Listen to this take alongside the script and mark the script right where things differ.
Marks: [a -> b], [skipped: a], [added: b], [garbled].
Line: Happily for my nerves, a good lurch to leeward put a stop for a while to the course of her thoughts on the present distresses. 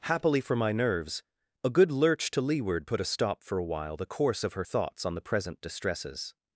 Happily for my nerves, a good lurch to leeward put a stop for a while [skipped: to] the course of her thoughts on the present distresses.